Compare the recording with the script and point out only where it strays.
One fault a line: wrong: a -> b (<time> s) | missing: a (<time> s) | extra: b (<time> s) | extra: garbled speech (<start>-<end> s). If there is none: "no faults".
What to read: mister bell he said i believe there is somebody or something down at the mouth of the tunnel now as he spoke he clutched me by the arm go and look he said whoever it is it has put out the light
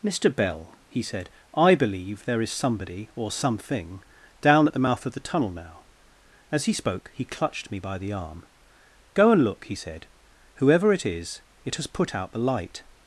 no faults